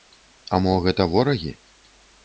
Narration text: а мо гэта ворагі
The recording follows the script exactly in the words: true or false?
true